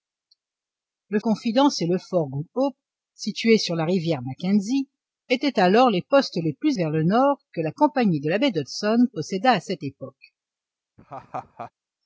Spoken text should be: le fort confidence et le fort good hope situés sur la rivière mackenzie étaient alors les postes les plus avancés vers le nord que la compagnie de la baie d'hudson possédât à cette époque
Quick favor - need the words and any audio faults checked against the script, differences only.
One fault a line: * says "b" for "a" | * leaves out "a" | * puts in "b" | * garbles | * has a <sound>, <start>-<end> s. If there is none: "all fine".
* leaves out "fort"
* leaves out "avancés"
* has a laugh, 11.0-11.7 s